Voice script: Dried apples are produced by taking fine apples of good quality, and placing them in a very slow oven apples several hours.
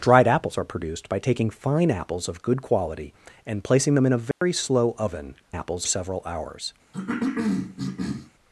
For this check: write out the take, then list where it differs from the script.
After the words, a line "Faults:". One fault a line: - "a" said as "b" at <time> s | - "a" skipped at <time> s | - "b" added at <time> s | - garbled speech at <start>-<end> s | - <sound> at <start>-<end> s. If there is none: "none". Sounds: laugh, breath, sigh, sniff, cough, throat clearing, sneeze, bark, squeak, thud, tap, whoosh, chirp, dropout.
Dried apples are produced by taking fine apples of good quality, and placing them in a very slow oven apples several hours.
Faults:
- dropout at 4.3-4.4 s
- cough at 6.9-8.3 s